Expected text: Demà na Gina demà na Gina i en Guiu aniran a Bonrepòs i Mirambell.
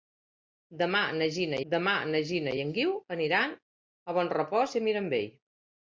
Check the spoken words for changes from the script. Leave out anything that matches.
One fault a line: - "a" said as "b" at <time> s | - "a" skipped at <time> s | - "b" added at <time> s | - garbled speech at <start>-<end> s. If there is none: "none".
none